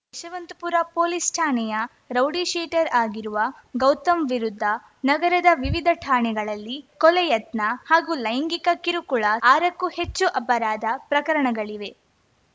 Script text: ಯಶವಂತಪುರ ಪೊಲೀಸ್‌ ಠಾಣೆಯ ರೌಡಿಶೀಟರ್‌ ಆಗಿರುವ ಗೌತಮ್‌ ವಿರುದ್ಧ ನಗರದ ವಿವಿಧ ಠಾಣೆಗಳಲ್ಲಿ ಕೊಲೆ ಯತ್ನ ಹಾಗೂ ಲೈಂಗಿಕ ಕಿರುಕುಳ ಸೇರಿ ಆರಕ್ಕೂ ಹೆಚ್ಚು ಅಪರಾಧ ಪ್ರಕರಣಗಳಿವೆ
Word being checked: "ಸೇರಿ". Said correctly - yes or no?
no